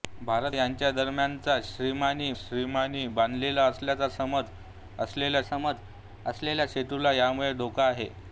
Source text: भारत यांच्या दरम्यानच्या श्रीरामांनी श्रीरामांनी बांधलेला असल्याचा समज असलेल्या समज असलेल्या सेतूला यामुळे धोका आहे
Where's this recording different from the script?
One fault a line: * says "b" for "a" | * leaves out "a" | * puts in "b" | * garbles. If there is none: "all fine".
all fine